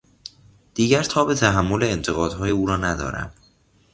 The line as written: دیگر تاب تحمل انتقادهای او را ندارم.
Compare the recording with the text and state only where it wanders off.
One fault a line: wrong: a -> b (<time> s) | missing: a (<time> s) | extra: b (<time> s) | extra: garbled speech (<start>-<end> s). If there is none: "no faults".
no faults